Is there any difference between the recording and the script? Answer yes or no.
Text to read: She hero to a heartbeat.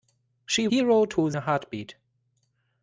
no